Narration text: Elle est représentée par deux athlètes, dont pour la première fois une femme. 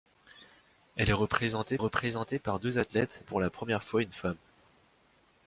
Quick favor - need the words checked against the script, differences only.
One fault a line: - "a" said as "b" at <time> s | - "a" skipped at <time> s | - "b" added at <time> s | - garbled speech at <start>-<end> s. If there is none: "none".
- "représentée" added at 1.8 s
- "dont" skipped at 3.2 s